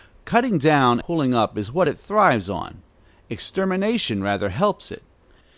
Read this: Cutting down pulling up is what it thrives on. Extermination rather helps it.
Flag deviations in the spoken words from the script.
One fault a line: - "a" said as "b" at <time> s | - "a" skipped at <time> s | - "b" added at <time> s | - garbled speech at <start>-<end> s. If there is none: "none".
none